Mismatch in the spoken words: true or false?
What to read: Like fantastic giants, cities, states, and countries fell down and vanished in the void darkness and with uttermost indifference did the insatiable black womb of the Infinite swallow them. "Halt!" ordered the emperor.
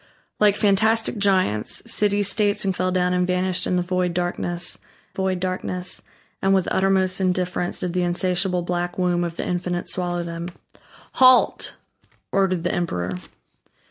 true